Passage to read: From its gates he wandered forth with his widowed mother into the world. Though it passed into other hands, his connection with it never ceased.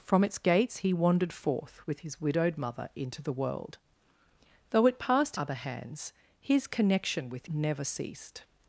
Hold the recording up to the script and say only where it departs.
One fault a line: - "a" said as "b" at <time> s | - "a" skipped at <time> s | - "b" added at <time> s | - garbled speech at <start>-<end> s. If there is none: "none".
- "into" skipped at 5.4 s
- "it" skipped at 7.5 s